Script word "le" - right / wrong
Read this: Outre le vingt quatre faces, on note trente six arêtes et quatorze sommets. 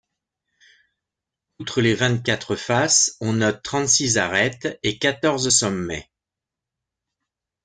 wrong